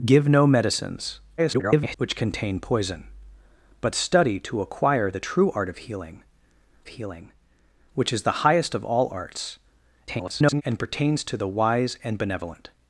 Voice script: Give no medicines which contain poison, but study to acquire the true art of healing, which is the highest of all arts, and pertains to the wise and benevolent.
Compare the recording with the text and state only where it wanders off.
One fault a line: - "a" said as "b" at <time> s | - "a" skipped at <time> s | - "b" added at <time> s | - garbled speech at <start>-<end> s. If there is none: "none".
- garbled speech at 1.4-2.0 s
- "healing" added at 6.9 s
- garbled speech at 10.1-10.6 s